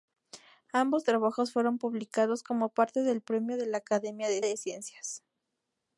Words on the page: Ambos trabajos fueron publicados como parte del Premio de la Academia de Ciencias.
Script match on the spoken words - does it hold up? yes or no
no